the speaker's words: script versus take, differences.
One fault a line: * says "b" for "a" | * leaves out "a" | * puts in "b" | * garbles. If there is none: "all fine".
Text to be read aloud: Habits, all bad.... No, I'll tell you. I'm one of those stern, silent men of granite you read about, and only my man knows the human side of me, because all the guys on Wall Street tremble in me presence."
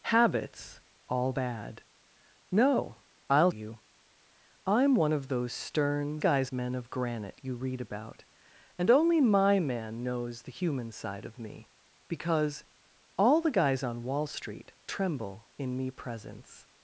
* leaves out "tell"
* says "guys" for "silent"